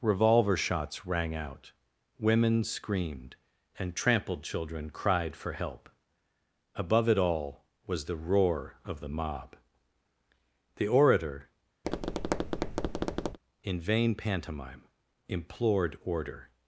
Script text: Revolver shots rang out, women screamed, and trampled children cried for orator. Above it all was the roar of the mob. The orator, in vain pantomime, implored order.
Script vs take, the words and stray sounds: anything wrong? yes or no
yes